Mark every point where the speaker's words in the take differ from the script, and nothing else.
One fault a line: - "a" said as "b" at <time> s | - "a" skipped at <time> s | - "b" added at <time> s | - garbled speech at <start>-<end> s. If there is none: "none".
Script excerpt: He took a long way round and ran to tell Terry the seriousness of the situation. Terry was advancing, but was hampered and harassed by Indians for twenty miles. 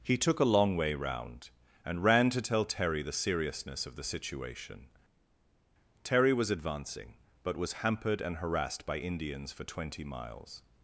none